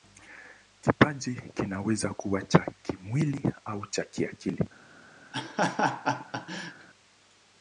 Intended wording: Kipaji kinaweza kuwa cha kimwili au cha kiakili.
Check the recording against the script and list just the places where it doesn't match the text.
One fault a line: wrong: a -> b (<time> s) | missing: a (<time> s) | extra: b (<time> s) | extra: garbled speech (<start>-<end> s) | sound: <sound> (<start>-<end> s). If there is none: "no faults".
sound: laugh (5.3-6.9 s)